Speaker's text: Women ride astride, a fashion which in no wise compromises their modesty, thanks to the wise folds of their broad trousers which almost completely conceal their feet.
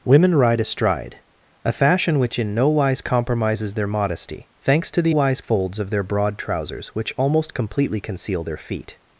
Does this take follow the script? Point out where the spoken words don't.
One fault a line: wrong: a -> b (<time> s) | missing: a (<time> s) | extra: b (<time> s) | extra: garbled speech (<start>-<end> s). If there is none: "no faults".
no faults